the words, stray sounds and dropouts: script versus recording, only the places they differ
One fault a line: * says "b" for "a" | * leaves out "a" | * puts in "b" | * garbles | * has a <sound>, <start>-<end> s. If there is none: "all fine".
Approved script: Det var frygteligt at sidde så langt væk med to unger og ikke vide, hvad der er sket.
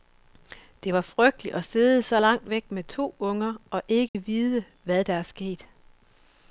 * has a dropout, 4.1-4.1 s